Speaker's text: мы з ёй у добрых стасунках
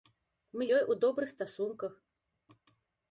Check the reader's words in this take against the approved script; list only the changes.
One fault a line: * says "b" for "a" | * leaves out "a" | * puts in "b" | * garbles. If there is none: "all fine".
* leaves out "з"